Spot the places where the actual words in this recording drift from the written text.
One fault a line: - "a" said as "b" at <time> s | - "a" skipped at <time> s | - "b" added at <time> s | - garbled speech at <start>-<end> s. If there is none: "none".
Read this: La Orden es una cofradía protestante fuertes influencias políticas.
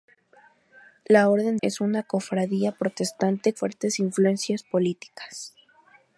none